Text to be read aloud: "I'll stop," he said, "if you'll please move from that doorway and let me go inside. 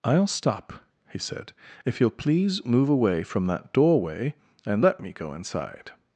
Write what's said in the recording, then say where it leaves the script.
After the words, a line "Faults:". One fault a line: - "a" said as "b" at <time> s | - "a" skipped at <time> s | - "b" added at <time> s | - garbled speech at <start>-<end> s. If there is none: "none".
"I'll stop," he said, "if you'll please move away from that doorway and let me go inside.
Faults:
- "away" added at 2.9 s